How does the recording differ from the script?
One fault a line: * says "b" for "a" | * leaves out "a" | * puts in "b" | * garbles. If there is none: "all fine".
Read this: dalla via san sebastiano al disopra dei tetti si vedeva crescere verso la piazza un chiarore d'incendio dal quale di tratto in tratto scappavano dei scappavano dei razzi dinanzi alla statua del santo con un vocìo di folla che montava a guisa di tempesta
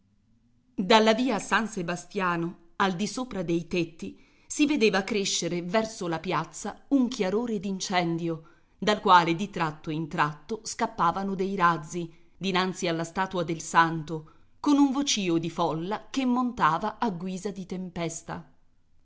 * leaves out "scappavano dei"